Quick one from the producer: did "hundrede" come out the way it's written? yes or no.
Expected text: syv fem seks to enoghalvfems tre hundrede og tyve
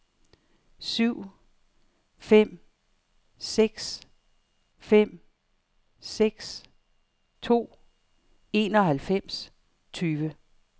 no